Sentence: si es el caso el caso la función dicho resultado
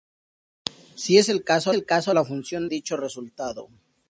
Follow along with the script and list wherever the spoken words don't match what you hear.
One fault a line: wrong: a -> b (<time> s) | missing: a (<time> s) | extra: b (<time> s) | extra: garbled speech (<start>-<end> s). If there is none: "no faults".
no faults